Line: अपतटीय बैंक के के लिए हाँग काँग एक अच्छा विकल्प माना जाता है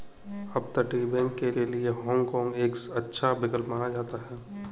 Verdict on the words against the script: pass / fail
pass